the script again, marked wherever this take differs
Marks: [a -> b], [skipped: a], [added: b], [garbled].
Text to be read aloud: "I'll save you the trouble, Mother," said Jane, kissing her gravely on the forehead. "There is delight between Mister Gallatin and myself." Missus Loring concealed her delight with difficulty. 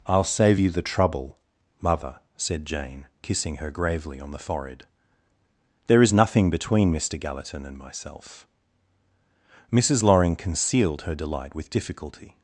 "I'll save you the trouble, Mother," said Jane, kissing her gravely on the forehead. "There is [delight -> nothing] between Mister Gallatin and myself." Missus Loring concealed her delight with difficulty.